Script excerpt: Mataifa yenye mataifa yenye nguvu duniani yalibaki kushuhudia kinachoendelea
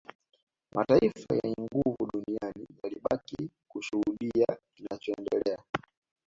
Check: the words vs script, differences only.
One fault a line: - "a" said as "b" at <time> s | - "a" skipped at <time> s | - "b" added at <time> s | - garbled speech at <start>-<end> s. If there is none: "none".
- "mataifa yenye" skipped at 1.6 s